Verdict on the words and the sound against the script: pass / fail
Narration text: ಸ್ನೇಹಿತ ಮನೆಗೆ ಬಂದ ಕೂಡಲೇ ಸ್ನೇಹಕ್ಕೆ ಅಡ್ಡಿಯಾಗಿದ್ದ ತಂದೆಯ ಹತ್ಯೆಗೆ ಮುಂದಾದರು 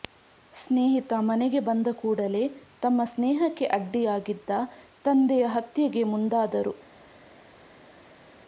fail